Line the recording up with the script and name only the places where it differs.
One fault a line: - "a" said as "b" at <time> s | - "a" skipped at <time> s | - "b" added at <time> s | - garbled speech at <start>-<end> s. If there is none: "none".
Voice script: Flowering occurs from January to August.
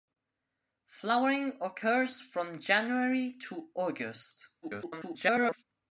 - garbled speech at 4.6-5.6 s